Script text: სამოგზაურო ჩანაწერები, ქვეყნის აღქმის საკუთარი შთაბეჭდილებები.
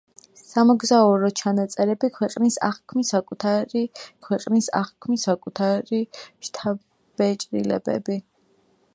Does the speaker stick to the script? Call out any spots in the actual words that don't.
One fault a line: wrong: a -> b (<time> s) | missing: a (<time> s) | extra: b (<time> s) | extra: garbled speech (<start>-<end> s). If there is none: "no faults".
extra: ქვეყნის აღქმის საკუთარი (4.2 s)